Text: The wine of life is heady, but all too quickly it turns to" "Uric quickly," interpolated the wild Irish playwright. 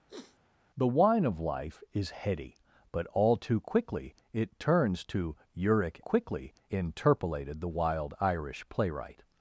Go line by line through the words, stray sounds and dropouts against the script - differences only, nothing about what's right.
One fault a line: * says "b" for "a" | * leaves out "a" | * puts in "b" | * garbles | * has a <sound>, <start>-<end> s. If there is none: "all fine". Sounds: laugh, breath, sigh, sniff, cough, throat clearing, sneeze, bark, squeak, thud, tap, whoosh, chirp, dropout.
* has a sniff, 0.1-0.4 s